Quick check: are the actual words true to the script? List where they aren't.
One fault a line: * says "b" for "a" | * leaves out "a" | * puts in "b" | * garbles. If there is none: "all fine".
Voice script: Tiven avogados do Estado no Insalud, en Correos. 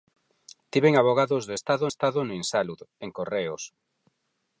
* puts in "Estado"